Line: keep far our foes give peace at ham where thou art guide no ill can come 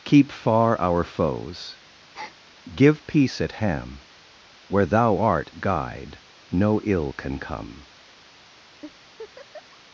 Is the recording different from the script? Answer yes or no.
no